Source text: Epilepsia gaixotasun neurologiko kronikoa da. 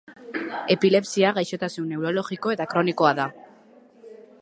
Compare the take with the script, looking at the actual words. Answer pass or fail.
fail